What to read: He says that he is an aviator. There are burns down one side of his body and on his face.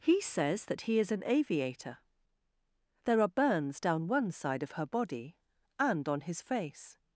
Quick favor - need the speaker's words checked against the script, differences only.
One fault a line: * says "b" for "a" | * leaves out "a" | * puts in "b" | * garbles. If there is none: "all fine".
* says "her" for "his"